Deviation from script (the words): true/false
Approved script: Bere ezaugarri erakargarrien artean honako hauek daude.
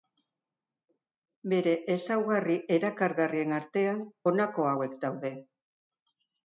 false